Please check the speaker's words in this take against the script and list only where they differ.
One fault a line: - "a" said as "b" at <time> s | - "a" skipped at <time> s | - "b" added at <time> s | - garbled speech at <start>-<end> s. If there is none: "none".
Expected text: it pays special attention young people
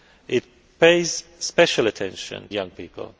none